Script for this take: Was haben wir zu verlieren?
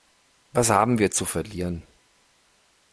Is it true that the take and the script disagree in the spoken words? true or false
false